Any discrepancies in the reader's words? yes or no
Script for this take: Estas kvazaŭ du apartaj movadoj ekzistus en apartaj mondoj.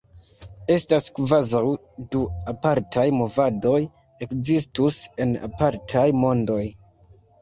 no